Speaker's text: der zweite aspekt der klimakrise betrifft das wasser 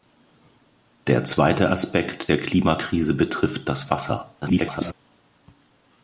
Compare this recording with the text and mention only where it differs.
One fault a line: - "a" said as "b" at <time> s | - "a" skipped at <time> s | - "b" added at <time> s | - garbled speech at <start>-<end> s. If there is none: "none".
- garbled speech at 4.4-4.9 s